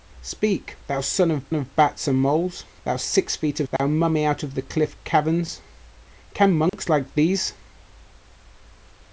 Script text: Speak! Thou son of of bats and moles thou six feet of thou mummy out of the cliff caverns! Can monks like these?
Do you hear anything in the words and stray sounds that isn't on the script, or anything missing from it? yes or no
yes